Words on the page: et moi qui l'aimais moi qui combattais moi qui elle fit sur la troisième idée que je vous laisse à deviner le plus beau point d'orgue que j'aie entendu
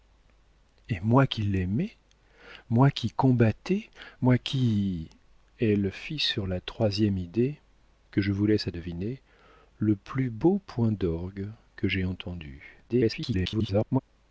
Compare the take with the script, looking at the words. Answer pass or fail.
fail